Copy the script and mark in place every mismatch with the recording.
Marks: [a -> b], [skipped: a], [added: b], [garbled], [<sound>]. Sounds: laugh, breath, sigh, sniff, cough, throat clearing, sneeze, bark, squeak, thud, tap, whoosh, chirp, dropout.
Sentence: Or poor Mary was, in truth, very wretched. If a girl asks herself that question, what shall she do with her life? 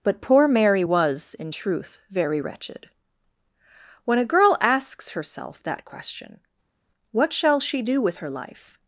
[Or -> But] poor Mary was, in truth, very wretched. [If -> When] a girl asks herself that question, what shall she do with her life?